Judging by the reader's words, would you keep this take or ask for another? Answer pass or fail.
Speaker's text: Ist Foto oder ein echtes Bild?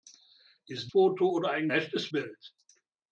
pass